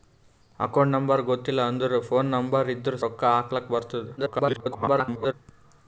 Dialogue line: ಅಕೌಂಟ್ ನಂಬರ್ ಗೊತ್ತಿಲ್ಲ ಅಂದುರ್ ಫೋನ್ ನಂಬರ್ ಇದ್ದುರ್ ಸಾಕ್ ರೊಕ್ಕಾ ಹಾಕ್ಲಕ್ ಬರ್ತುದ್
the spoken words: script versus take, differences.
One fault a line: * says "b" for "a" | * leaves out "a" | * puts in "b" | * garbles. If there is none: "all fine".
* leaves out "ಸಾಕ್"
* garbles